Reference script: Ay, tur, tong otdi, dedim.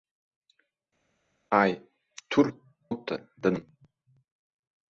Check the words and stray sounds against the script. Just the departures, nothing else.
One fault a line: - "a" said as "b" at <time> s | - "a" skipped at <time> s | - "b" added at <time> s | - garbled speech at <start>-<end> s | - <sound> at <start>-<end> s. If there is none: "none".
- "tong" skipped at 2.5 s